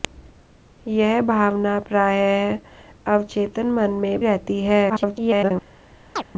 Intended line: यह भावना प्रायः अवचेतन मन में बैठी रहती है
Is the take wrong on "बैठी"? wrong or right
wrong